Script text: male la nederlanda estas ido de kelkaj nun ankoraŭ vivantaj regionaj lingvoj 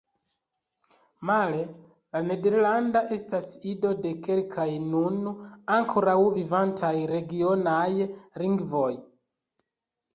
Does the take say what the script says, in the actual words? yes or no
yes